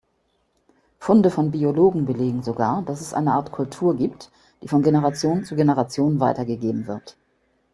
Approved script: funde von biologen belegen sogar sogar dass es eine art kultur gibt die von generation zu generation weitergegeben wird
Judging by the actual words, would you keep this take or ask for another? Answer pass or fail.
fail